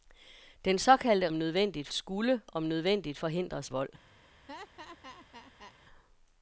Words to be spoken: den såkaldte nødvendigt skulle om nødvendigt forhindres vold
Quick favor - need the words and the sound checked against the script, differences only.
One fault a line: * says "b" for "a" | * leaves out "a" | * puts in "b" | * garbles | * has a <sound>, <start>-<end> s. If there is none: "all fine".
* has a laugh, 4.5-5.7 s